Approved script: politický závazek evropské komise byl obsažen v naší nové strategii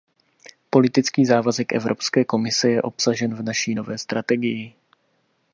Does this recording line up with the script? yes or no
no